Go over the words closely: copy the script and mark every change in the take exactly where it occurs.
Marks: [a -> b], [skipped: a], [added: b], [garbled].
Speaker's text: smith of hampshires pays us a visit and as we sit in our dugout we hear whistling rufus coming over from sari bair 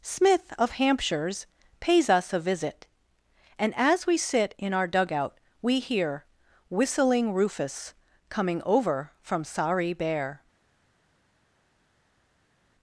smith of hampshires pays us a visit and as we sit in our dugout we hear whistling rufus coming over from sari bair